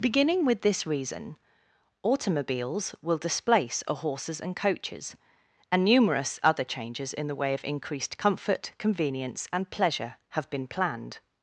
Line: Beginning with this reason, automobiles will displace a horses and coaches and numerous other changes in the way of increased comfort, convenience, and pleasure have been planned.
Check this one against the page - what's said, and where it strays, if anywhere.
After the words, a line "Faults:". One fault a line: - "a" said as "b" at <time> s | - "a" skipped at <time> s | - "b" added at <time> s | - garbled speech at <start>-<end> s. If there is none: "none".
Beginning with this reason, automobiles will displace a horses and coaches and numerous other changes in the way of increased comfort, convenience, and pleasure have been planned.
Faults:
none